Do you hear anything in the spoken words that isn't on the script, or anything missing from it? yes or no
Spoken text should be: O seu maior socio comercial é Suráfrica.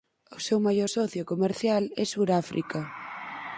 no